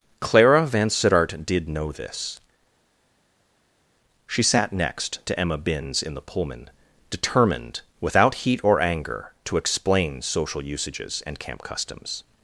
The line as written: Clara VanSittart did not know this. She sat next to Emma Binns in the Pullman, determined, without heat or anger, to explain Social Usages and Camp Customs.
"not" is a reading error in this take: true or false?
true